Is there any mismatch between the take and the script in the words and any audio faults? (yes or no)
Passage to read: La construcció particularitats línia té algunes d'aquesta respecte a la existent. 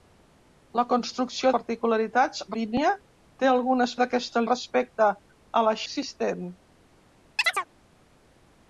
yes